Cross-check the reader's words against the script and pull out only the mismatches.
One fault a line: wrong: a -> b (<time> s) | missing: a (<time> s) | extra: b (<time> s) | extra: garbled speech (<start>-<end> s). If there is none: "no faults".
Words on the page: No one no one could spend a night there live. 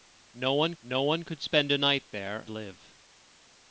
no faults